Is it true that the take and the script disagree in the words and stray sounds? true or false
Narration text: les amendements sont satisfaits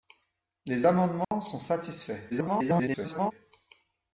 true